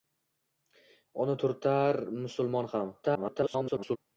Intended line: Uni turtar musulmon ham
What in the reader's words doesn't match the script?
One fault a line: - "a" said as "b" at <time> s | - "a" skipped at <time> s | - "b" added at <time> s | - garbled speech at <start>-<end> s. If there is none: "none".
- garbled speech at 3.0-4.0 s